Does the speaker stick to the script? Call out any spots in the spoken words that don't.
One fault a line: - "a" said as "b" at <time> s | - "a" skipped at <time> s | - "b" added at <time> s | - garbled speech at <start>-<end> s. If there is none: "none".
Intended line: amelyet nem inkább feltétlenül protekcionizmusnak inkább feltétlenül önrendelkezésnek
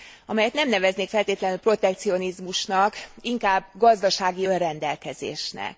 - "inkább" said as "neveznék" at 0.7 s
- "feltétlenül" said as "gazdasági" at 3.7 s